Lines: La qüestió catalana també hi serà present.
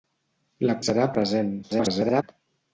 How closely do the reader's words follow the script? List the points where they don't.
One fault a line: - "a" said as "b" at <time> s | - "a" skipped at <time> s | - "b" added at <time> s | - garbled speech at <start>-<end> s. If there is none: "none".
- "qüestió catalana també" skipped at 0.8 s
- garbled speech at 1.6-2.2 s